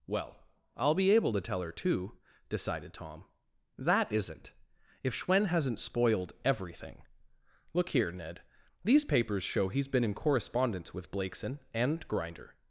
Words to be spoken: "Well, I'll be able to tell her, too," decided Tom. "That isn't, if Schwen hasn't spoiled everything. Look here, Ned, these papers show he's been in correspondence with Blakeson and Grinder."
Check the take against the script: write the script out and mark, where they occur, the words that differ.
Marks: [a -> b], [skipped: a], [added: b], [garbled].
"Well, I'll be able to tell her, too," decided Tom. "That isn't, if Schwen hasn't spoiled everything. Look here, Ned, these papers show he's been in correspondence with Blakeson and Grinder."